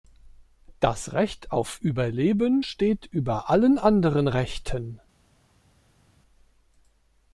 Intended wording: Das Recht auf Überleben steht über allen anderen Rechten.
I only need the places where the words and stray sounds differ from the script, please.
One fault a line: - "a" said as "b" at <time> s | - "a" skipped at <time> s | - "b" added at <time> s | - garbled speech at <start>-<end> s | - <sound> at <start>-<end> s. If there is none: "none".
none